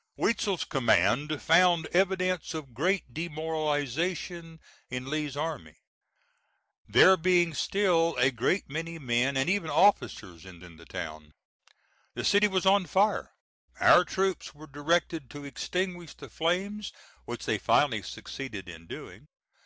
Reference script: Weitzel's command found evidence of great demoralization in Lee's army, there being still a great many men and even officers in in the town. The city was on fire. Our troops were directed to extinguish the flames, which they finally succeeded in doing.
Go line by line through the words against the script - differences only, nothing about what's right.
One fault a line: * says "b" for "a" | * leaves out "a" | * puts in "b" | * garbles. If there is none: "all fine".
all fine